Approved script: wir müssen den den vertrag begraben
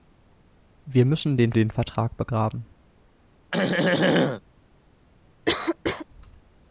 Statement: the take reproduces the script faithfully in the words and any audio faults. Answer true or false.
false